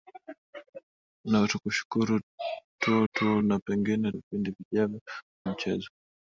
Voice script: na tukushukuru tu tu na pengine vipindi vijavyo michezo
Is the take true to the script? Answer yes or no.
yes